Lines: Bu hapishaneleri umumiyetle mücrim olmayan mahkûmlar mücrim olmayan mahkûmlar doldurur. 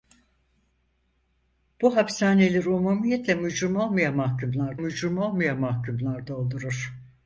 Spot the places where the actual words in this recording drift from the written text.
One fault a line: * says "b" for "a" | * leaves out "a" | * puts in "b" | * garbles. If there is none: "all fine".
all fine